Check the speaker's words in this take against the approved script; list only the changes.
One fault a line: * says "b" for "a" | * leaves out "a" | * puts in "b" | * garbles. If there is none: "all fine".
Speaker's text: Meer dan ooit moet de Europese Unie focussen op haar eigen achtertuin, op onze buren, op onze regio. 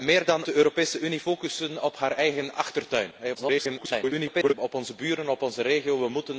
* leaves out "ooit moet"
* garbles